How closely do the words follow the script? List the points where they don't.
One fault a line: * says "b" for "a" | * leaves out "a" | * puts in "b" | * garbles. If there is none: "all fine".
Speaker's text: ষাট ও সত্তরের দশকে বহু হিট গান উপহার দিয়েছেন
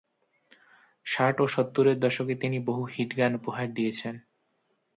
* puts in "তিনি"